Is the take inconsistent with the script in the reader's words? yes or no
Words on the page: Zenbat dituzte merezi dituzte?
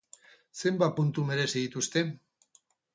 yes